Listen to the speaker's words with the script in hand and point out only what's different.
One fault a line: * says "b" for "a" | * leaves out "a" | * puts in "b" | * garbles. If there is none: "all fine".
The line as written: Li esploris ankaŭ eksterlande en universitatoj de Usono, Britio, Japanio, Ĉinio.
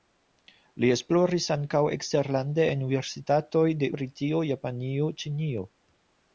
* leaves out "Usono"